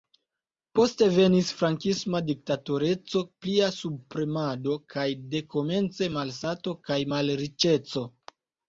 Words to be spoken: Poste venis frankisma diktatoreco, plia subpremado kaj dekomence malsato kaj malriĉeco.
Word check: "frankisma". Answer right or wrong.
right